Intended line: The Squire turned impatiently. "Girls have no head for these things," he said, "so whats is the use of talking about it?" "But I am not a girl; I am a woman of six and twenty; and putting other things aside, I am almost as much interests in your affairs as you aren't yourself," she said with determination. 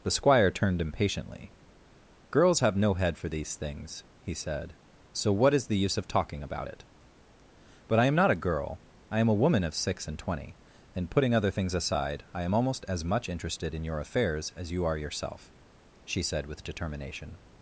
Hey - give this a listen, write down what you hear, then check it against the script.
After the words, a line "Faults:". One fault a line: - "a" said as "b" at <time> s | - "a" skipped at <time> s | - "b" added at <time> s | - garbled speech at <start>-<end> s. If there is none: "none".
The Squire turned impatiently. "Girls have no head for these things," he said, "so what is the use of talking about it?" "But I am not a girl; I am a woman of six and twenty; and putting other things aside, I am almost as much interested in your affairs as you are yourself," she said with determination.
Faults:
- "whats" said as "what" at 5.3 s
- "interests" said as "interested" at 13.3 s
- "aren't" said as "are" at 14.9 s